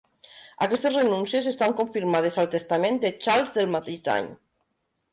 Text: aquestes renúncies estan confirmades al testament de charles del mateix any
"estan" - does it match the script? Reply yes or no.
yes